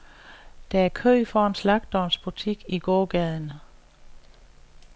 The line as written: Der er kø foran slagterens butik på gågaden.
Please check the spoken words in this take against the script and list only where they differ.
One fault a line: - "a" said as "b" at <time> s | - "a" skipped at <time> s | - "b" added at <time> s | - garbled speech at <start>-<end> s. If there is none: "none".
- "på" said as "i" at 2.7 s